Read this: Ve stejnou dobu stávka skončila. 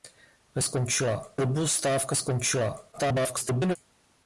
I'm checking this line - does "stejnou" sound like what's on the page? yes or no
no